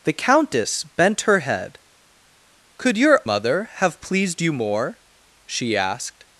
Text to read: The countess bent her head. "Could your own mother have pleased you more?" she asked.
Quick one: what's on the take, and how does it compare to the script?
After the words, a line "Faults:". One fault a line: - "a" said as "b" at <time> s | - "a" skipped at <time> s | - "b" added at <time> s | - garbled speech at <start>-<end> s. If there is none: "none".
The countess bent her head. "Could your mother have pleased you more?" she asked.
Faults:
- "own" skipped at 3.2 s